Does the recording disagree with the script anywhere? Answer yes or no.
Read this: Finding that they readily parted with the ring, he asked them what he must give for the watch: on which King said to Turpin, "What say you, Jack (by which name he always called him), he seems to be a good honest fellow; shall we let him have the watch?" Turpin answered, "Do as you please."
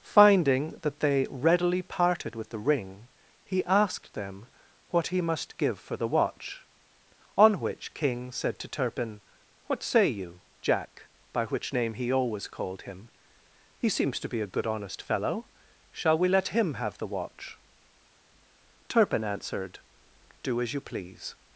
no